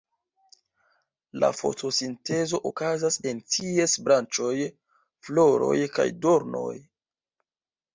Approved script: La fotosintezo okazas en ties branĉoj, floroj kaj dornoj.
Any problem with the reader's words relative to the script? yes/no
no